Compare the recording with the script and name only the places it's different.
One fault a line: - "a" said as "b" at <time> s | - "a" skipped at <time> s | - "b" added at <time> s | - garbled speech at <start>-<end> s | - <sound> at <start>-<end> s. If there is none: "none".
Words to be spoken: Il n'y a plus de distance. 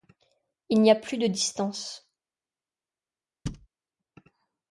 - thud at 3.5-3.7 s